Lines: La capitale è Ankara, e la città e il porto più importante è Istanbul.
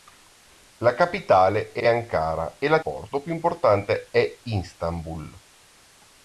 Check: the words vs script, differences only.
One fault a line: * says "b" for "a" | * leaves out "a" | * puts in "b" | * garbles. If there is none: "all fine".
* puts in "è"
* leaves out "città e il"